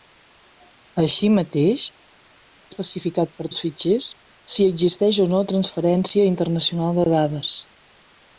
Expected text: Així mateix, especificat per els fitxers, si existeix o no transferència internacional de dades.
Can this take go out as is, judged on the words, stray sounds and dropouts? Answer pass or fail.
pass